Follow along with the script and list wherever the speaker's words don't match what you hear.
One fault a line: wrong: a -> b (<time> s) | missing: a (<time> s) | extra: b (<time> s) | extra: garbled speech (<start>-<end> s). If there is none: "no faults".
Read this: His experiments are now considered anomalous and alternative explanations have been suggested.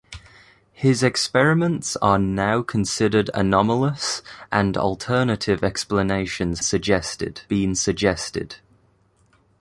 wrong: have -> suggested (6.6 s)